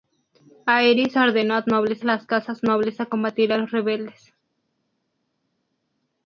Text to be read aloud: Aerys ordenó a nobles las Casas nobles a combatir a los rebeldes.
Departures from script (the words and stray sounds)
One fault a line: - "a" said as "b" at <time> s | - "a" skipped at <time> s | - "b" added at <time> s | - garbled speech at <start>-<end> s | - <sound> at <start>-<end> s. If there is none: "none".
none